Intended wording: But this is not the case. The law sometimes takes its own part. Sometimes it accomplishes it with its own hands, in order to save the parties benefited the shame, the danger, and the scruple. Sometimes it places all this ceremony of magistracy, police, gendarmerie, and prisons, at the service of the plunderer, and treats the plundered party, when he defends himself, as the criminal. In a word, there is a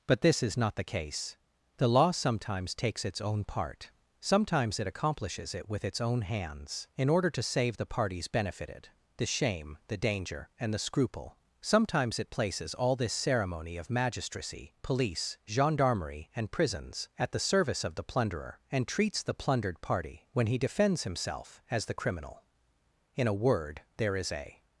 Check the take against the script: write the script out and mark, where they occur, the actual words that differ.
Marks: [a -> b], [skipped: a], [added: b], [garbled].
But this is not the case. The law sometimes takes its own part. Sometimes it accomplishes it with its own hands, in order to save the parties benefited the shame, the danger, and the scruple. Sometimes it places all this ceremony of magistracy, police, gendarmerie, and prisons, at the service of the plunderer, and treats the plundered party, when he defends himself, as the criminal. In a word, there is a